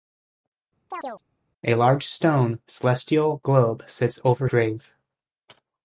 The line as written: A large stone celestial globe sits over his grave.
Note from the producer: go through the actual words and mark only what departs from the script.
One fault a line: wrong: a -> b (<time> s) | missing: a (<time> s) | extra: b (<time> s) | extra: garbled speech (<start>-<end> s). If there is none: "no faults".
missing: his (4.5 s)